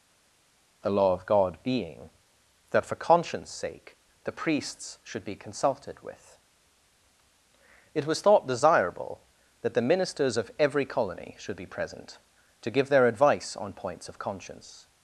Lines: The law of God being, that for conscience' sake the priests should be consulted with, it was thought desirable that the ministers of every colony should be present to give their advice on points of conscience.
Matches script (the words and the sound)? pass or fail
pass